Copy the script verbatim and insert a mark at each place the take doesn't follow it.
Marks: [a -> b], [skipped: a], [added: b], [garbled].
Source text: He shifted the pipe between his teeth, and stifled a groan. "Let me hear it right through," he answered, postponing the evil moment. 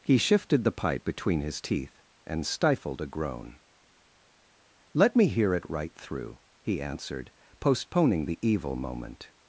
He shifted the pipe between his teeth, and stifled a groan. "Let me hear it right through," he answered, postponing the evil moment.